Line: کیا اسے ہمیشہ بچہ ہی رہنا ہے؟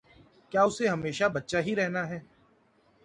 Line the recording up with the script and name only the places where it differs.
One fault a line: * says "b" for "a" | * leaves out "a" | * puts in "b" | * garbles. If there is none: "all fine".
all fine